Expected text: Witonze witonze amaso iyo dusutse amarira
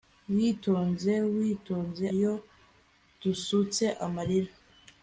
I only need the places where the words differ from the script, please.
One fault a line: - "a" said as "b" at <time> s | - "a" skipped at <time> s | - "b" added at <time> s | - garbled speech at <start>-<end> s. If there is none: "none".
- "amaso" skipped at 2.0 s